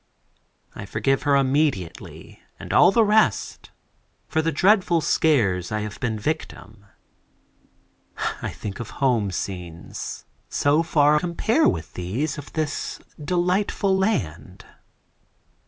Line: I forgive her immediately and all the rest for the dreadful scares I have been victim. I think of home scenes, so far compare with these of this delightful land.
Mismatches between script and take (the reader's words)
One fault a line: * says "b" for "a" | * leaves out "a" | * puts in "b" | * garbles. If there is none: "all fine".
all fine